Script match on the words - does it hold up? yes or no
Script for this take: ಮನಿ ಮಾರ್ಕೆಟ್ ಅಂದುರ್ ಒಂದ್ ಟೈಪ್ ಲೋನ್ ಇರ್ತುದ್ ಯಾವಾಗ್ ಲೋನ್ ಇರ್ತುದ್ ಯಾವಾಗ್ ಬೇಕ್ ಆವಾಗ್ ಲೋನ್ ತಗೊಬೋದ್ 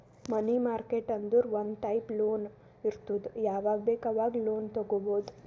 no